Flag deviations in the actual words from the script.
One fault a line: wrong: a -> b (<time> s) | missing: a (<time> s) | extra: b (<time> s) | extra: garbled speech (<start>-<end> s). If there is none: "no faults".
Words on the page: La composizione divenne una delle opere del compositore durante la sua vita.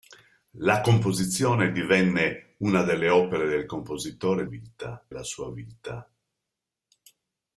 wrong: durante -> vita (4.5 s)